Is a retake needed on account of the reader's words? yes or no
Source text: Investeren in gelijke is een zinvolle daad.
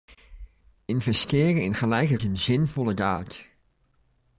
no